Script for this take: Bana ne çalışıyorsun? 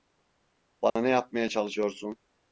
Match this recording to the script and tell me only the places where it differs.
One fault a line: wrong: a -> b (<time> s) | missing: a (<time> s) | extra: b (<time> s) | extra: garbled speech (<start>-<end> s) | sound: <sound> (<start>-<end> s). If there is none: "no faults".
sound: dropout (0.9-1.0 s)
extra: yapmaya (1.1 s)